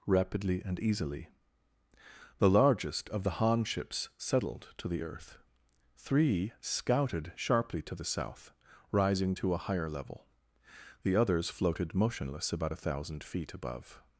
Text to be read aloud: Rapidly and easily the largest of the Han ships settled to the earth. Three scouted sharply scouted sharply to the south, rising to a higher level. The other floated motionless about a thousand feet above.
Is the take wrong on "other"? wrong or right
wrong